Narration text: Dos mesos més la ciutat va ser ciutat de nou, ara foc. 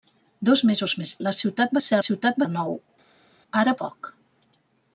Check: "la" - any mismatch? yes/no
no